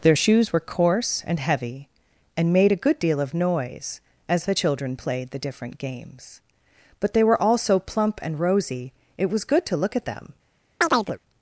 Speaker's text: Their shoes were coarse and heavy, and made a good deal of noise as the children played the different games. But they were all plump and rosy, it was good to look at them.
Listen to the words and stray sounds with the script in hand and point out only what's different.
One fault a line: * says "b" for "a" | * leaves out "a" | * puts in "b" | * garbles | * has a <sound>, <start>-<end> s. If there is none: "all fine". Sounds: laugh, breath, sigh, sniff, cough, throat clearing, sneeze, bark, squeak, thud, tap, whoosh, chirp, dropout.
* puts in "so"
* has a chirp, 10.8-11.2 s